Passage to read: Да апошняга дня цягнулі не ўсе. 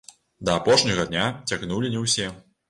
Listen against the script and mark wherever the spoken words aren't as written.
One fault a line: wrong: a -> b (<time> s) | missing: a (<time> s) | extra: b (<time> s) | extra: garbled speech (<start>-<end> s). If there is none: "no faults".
no faults